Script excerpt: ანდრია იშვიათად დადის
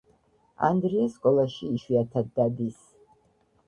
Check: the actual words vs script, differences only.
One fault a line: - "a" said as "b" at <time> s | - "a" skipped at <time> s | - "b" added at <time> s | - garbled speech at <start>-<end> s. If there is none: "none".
- "სკოლაში" added at 1.2 s